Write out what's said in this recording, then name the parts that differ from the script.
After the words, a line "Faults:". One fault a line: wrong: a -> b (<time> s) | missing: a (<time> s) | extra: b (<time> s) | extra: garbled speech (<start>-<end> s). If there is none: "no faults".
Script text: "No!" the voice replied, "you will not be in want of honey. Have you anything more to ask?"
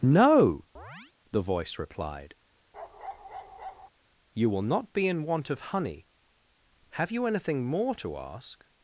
"No!" the voice replied, "you will not be in want of honey. Have you anything more to ask?"
Faults:
no faults